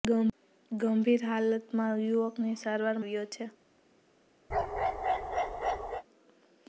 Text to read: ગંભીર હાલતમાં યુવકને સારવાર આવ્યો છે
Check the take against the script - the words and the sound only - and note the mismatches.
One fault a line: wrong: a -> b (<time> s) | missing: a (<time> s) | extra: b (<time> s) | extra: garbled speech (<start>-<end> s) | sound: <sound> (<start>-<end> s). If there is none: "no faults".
sound: bark (4.5-6.0 s)